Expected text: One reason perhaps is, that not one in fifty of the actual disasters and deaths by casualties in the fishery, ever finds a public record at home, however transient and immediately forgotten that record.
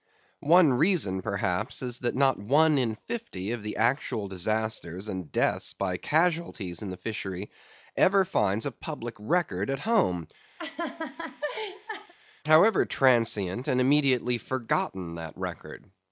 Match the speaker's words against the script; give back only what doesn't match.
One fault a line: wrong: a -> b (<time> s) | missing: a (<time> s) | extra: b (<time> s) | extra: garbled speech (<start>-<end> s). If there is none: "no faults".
no faults